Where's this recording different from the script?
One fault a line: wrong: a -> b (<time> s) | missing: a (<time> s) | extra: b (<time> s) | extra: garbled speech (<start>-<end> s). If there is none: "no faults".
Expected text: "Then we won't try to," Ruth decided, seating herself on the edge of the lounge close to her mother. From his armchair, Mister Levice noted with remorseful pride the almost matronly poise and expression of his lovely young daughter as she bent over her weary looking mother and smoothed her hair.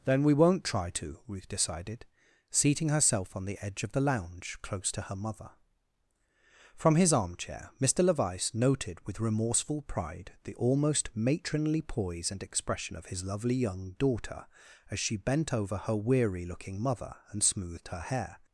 no faults